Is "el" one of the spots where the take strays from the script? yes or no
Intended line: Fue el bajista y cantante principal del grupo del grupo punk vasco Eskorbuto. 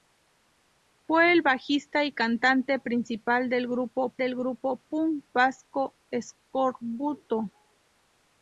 no